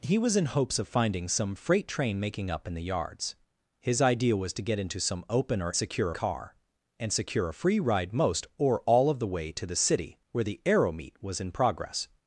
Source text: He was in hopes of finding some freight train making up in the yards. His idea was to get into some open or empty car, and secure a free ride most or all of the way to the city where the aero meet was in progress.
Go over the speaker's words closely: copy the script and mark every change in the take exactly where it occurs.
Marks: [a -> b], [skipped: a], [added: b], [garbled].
He was in hopes of finding some freight train making up in the yards. His idea was to get into some open or [empty -> secure] car, and secure a free ride most or all of the way to the city where the aero meet was in progress.